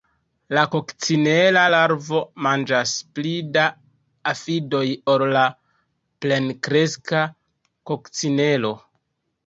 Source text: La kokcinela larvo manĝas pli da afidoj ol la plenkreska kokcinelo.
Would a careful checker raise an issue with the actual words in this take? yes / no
no